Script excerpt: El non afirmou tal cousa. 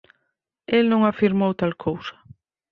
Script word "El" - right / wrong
right